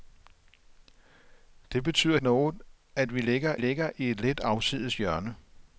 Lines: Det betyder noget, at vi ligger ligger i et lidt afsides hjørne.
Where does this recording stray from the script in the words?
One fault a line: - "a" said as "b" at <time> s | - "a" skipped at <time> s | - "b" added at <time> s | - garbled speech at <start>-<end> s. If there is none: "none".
none